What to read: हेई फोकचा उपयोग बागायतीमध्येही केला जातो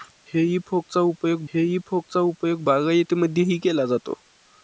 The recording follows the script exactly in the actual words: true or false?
false